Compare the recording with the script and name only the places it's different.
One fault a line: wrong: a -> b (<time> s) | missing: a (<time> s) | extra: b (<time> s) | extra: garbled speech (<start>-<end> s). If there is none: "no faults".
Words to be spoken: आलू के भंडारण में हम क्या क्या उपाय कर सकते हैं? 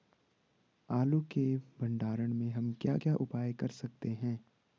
no faults